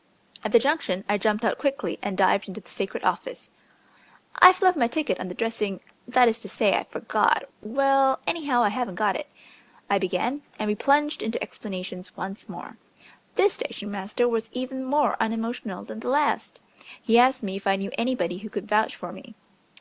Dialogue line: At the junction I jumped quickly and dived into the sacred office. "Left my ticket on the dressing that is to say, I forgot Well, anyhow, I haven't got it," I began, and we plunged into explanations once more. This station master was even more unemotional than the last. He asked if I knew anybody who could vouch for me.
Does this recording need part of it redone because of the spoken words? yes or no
yes